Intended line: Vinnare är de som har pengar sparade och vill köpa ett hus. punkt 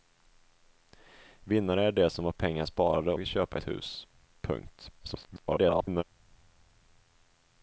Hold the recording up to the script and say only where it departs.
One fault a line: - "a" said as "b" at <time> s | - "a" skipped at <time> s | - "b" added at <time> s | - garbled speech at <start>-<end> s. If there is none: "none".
- "och" skipped at 3.1 s
- garbled speech at 5.0-6.0 s